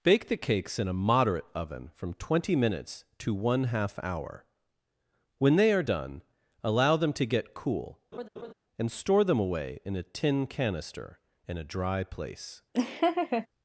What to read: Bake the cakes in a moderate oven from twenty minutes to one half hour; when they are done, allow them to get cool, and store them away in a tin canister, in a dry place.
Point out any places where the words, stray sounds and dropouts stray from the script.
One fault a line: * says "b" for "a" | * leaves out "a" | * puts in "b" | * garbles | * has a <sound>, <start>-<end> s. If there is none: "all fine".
* has a laugh, 8.1-8.5 s
* has a laugh, 12.7-13.5 s